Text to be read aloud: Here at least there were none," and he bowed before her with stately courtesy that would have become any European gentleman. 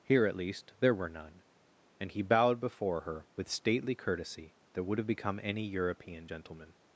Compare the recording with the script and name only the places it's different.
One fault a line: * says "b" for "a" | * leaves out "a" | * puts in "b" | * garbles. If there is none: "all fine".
all fine